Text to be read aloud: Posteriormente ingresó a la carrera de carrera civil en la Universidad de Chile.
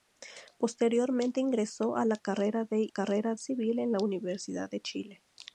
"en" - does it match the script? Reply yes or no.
yes